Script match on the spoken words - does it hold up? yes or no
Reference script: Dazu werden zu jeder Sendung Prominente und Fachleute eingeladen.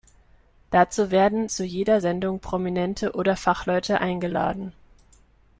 no